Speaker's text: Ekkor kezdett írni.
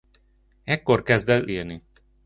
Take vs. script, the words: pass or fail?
pass